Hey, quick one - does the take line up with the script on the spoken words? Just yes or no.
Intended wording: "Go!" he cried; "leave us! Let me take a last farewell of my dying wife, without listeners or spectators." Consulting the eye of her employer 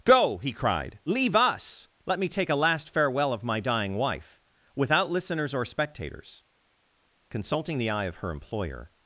yes